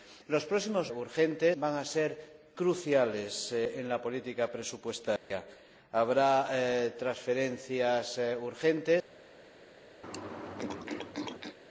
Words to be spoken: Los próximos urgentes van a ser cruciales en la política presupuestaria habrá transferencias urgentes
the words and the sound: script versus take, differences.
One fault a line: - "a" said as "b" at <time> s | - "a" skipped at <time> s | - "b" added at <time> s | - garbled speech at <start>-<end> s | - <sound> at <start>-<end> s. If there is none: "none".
- dropout at 5.2-5.3 s
- throat clearing at 10.0-11.6 s